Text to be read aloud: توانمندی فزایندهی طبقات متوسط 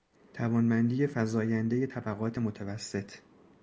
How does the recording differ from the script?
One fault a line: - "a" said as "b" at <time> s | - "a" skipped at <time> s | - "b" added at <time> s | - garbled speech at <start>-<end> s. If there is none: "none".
none